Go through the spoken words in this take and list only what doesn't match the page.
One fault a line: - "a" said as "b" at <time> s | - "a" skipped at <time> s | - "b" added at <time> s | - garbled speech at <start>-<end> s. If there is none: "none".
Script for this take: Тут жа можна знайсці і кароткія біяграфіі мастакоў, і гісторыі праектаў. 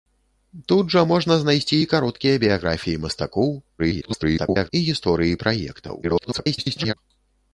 - garbled speech at 3.8-4.7 s
- garbled speech at 6.0-6.9 s